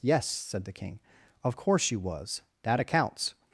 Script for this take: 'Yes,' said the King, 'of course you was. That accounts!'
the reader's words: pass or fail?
pass